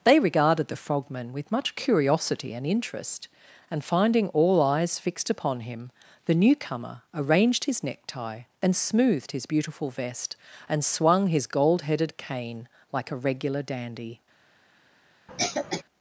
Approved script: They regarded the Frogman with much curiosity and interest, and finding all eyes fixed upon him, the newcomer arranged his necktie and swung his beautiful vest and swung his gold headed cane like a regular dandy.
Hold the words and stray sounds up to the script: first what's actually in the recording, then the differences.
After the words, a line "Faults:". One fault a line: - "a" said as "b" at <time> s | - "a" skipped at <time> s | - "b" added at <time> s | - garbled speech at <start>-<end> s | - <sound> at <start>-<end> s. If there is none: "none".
They regarded the Frogman with much curiosity and interest, and finding all eyes fixed upon him, the newcomer arranged his necktie and smoothed his beautiful vest and swung his gold headed cane like a regular dandy.
Faults:
- "swung" said as "smoothed" at 8.8 s
- cough at 15.3-15.8 s